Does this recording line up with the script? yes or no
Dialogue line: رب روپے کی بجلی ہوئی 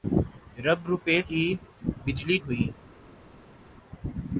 yes